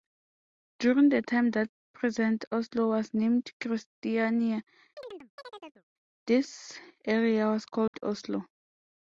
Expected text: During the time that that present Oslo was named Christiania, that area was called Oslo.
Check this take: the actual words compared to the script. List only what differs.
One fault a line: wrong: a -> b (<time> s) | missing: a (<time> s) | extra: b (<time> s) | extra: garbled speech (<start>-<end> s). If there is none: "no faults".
missing: that (1.7 s)
wrong: that -> this (6.3 s)